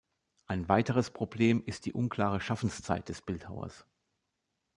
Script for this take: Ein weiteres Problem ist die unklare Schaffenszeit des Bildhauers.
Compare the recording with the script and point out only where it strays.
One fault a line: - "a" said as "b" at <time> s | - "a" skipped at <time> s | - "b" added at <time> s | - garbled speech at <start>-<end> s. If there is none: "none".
none